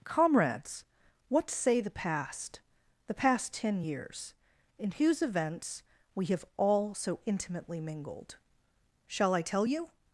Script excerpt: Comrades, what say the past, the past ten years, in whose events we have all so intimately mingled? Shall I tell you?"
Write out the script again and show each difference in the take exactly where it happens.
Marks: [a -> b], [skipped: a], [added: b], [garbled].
Comrades, what say the past, the past ten years, in whose events we have all so intimately mingled? Shall I tell you?"